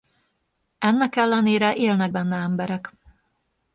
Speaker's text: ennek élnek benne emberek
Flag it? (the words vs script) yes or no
yes